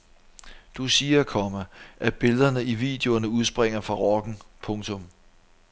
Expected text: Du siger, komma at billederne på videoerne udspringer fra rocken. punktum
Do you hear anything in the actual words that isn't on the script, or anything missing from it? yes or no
yes